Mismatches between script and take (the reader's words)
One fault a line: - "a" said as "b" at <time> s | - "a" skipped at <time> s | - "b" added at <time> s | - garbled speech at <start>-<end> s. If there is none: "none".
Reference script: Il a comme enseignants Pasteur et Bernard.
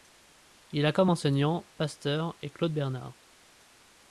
- "Claude" added at 2.5 s